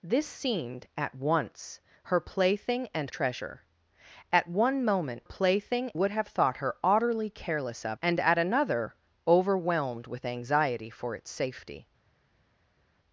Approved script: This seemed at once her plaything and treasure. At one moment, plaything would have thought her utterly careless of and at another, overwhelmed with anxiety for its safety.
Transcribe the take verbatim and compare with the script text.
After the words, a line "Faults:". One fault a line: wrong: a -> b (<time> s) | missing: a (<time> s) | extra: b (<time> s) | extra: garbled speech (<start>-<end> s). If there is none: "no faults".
This seemed at once her plaything and treasure. At one moment, plaything would have thought her utterly careless of and at another, overwhelmed with anxiety for its safety.
Faults:
no faults